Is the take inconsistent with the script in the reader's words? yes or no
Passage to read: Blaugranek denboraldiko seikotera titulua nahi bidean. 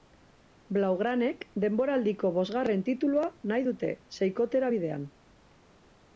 yes